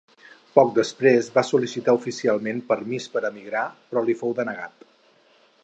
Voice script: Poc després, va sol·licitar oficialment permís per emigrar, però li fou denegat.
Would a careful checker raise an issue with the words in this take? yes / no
no